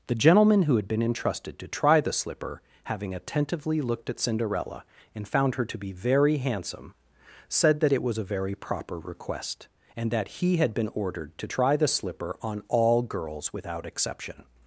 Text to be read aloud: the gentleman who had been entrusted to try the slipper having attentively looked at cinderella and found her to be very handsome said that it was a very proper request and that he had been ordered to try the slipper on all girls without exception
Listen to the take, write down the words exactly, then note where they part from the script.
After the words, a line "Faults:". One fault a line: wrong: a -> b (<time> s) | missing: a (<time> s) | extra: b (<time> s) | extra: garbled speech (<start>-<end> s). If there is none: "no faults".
the gentleman who had been entrusted to try the slipper having attentively looked at cinderella and found her to be very handsome said that it was a very proper request and that he had been ordered to try the slipper on all girls without exception
Faults:
no faults